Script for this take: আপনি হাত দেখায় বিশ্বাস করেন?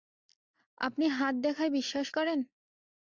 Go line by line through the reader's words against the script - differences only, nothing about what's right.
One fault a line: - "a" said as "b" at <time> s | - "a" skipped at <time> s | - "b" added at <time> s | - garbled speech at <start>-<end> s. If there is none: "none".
none